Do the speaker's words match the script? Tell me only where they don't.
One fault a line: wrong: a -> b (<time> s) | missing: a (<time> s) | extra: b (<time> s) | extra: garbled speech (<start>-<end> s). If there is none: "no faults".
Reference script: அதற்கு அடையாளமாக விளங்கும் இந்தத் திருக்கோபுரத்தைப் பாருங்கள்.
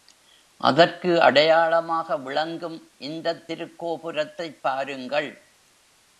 no faults